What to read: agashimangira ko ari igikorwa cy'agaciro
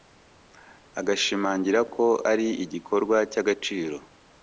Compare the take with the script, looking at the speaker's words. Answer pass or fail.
pass